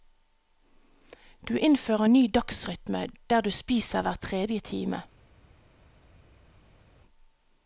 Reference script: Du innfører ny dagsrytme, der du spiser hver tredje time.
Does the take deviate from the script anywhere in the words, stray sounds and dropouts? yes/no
no